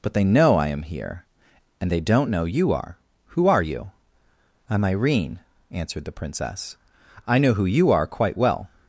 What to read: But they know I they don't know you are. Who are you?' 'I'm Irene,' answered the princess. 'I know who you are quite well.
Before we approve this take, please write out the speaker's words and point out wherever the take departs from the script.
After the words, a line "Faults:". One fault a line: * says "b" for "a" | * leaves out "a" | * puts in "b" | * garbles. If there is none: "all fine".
But they know I am here, and they don't know you are. Who are you?' 'I'm Irene,' answered the princess. 'I know who you are quite well.
Faults:
* puts in "am here and"